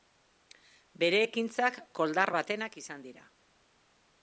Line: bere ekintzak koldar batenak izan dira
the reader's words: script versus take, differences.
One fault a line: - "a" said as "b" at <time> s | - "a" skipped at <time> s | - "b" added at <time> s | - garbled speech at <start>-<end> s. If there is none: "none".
none